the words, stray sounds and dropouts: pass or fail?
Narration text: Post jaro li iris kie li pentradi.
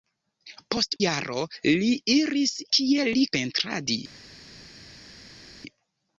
pass